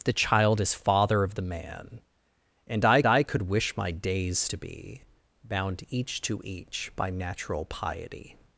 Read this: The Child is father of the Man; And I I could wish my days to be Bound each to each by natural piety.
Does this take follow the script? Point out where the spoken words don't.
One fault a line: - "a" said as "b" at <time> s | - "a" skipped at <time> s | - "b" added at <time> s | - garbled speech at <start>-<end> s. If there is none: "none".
none